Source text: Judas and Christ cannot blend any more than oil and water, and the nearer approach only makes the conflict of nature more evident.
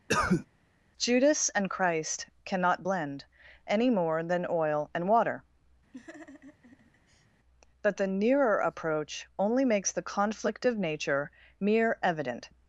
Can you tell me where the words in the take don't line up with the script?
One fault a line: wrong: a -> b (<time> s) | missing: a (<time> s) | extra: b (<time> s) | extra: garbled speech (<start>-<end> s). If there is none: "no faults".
wrong: and -> but (7.8 s)
wrong: more -> mere (11.6 s)